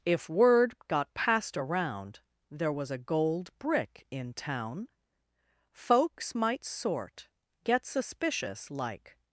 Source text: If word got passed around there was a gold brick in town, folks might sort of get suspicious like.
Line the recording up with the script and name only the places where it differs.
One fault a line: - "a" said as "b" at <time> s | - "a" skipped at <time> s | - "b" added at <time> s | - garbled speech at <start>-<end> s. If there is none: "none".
- "of" skipped at 7.3 s